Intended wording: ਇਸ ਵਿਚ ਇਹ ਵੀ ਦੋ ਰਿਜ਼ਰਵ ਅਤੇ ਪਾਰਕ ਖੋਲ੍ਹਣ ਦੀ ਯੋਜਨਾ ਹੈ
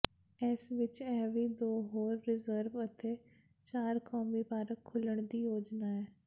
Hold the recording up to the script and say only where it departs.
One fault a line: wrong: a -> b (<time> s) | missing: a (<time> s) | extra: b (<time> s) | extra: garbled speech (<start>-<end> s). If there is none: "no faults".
extra: ਹੋਰ (1.9 s)
extra: ਚਾਰ ਕੌਮੀ (3.6 s)